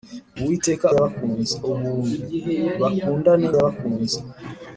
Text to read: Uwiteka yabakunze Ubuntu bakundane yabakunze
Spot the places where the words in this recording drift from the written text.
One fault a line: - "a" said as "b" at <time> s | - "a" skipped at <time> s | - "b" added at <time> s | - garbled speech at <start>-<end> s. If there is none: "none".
none